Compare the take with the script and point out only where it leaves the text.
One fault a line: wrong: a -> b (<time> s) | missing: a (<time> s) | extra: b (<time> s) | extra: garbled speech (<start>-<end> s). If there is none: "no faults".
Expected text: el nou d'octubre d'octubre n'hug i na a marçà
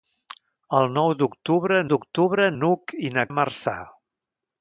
no faults